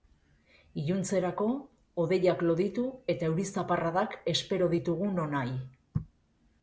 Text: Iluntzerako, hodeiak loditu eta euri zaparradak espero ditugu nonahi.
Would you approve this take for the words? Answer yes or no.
yes